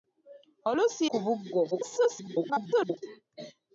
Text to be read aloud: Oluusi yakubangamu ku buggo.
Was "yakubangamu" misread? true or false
true